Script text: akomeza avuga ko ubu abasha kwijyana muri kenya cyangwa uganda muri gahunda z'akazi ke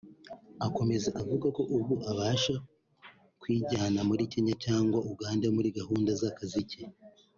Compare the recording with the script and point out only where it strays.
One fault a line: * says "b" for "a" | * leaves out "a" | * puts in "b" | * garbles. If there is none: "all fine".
all fine